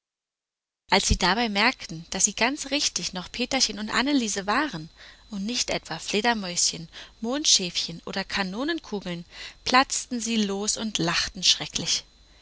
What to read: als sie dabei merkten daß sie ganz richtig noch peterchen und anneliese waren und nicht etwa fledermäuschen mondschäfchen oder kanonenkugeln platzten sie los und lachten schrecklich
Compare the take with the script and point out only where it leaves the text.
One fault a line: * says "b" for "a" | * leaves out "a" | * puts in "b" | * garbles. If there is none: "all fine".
all fine